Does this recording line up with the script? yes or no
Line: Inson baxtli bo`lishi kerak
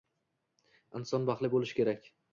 yes